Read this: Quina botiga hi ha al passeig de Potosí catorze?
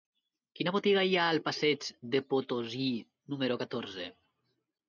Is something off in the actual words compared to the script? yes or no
yes